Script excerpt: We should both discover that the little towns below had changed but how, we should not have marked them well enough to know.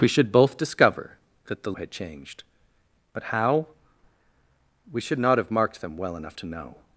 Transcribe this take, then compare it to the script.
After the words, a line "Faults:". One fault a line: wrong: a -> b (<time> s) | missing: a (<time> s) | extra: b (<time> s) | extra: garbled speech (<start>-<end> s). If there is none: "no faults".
We should both discover that the had changed but how, we should not have marked them well enough to know.
Faults:
missing: little towns below (1.7 s)